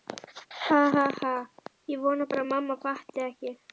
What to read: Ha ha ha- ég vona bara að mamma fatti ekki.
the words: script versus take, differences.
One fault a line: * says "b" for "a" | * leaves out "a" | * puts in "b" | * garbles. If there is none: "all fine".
all fine